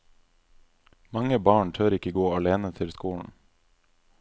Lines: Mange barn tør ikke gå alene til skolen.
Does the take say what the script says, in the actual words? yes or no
yes